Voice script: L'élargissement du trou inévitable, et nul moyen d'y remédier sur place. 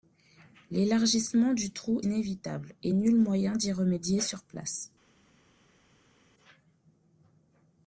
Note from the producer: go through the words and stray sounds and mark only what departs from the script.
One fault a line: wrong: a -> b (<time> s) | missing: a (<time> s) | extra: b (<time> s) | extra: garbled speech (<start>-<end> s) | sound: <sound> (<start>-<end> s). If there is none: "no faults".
no faults